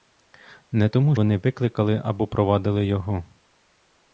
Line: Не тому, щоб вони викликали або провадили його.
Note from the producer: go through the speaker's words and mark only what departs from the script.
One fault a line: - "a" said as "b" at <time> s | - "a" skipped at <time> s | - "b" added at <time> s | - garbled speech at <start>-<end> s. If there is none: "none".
- "щоб" skipped at 1.1 s